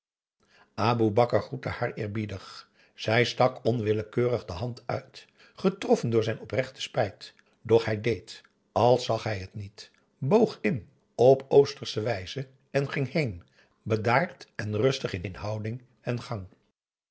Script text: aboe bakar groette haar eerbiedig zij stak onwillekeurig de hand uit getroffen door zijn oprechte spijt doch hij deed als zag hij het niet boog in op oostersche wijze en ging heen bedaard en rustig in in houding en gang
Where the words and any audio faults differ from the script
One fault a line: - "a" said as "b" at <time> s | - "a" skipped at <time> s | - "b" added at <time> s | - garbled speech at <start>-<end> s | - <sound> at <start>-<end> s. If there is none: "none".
none